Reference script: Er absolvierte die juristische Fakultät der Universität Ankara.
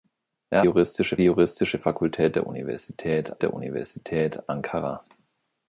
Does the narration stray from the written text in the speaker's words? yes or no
yes